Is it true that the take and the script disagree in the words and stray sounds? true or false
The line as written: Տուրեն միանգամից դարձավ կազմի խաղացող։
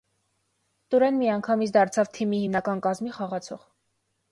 true